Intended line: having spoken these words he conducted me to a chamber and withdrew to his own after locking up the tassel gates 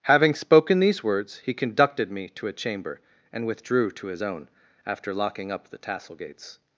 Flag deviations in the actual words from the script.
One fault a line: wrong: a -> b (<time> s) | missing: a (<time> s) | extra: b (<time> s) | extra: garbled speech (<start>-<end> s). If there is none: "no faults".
no faults